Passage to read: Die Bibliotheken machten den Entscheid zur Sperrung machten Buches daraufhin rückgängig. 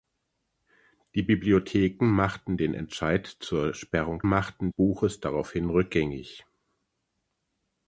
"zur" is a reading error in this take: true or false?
false